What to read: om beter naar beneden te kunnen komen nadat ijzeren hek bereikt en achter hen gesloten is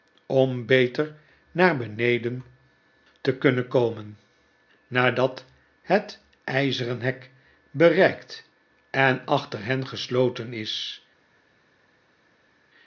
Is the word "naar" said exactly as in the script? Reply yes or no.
yes